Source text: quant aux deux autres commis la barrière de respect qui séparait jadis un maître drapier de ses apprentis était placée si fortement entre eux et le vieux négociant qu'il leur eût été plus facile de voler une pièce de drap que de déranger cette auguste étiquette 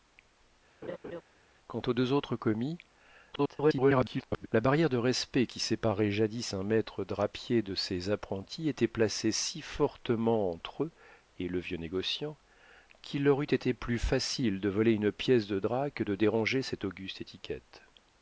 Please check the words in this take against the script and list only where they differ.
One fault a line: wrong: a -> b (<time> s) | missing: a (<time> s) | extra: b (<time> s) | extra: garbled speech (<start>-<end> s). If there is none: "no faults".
extra: garbled speech (3.3-4.5 s)